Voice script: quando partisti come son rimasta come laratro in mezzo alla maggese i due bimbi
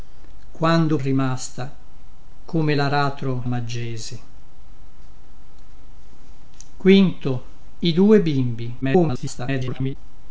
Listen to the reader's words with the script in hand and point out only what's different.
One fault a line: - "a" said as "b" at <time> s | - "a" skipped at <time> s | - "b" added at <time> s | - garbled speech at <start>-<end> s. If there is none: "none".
- "partisti come son" skipped at 1.0 s
- "in mezzo alla" skipped at 3.5 s
- garbled speech at 8.8-10.0 s